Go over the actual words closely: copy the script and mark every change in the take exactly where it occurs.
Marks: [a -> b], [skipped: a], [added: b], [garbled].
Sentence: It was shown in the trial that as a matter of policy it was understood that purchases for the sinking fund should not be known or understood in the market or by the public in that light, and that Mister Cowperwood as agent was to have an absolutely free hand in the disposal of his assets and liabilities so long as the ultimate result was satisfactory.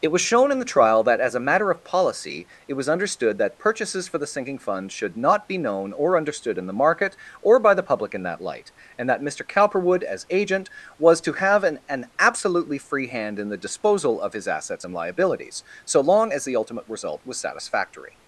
It was shown in the trial that as a matter of policy it was understood that purchases for the sinking fund should not be known or understood in the market or by the public in that light, and that Mister Cowperwood as agent was to have an [added: an] absolutely free hand in the disposal of his assets and liabilities so long as the ultimate result was satisfactory.